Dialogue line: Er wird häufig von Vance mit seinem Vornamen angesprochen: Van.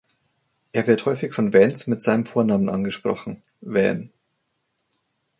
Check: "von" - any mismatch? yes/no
no